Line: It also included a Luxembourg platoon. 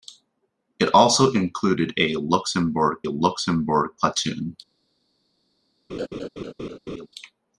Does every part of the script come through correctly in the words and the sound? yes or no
no